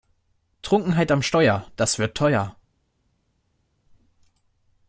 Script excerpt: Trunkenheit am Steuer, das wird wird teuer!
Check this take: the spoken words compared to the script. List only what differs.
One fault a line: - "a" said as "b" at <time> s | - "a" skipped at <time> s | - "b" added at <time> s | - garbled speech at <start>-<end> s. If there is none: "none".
- "wird" skipped at 2.2 s